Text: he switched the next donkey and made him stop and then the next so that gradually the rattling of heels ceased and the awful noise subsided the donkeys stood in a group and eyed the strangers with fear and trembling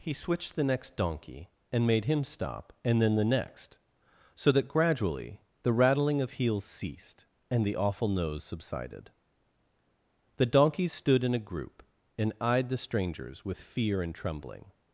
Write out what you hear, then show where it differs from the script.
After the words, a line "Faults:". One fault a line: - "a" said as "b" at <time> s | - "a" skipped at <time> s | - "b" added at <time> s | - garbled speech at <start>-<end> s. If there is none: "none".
he switched the next donkey and made him stop and then the next so that gradually the rattling of heels ceased and the awful nose subsided the donkeys stood in a group and eyed the strangers with fear and trembling
Faults:
- "noise" said as "nose" at 8.1 s